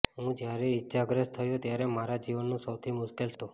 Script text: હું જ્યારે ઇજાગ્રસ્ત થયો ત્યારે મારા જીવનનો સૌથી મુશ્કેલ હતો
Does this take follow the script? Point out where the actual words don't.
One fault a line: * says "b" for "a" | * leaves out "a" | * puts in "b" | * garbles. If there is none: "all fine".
all fine